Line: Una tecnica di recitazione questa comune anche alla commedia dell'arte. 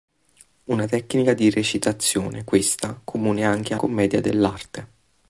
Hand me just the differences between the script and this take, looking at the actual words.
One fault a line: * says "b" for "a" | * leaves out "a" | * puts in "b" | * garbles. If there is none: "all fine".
* leaves out "alla"